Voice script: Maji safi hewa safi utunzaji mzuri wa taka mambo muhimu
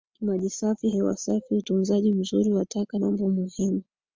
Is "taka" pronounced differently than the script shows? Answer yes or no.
no